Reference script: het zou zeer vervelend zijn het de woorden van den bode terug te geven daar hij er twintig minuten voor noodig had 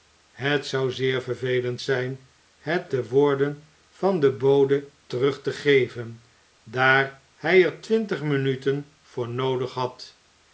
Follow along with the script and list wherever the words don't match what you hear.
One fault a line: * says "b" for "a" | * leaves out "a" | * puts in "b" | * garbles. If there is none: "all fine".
all fine